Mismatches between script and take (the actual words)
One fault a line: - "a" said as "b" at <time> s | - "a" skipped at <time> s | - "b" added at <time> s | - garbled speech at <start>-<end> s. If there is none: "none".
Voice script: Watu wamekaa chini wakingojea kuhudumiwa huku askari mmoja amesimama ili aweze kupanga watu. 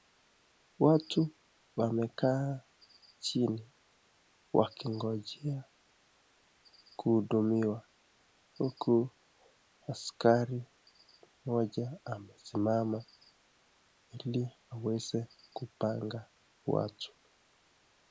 none